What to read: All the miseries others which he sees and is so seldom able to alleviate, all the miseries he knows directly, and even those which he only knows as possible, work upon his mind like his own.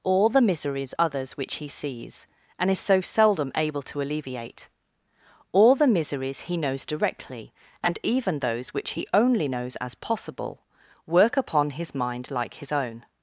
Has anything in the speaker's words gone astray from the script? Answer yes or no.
no